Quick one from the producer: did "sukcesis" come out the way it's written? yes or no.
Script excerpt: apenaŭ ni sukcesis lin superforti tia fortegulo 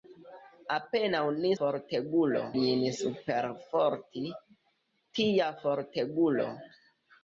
no